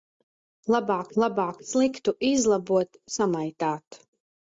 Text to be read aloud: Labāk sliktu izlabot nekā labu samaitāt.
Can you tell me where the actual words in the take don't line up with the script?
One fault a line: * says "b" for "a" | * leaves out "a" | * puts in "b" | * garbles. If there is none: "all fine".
* puts in "labāk"
* leaves out "nekā labu"